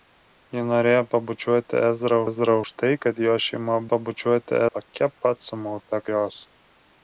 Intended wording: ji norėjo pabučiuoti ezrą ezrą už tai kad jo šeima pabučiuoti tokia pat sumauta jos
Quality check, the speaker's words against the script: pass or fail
pass